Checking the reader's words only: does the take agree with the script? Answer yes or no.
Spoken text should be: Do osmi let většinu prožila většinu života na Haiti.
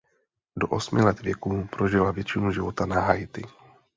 no